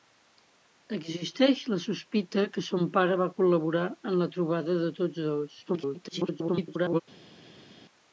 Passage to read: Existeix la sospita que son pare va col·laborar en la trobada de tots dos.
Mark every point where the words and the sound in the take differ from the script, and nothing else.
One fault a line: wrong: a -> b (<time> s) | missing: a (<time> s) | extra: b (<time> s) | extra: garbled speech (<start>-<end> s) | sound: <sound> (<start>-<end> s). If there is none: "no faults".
extra: garbled speech (5.7-7.0 s)